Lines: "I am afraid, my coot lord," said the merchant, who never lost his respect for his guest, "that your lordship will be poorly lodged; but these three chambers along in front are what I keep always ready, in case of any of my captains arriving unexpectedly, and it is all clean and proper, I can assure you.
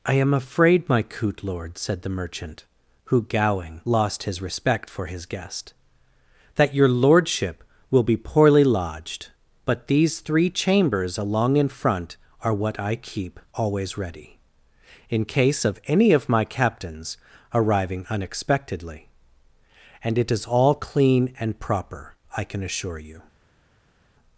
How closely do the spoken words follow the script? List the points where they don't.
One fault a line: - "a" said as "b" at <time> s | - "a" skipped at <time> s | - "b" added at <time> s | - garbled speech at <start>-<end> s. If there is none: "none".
- "never" said as "gowing" at 3.2 s